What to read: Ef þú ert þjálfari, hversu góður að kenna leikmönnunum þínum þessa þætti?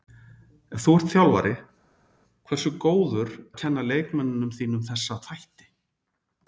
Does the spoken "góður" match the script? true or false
true